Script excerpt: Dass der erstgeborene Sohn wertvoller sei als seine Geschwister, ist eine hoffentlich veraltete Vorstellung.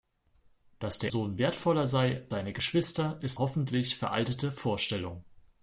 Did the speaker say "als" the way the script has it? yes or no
no